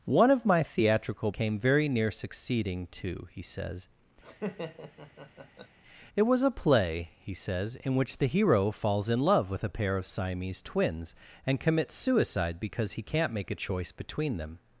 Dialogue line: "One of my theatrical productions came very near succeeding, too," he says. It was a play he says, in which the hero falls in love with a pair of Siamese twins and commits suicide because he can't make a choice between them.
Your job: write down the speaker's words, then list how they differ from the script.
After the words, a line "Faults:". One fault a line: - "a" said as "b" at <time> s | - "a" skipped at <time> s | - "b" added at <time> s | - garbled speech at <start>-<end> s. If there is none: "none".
"One of my theatrical came very near succeeding, too," he says. It was a play he says, in which the hero falls in love with a pair of Siamese twins and commits suicide because he can't make a choice between them.
Faults:
- "productions" skipped at 1.3 s